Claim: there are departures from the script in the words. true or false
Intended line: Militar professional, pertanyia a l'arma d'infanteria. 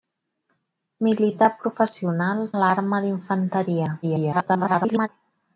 true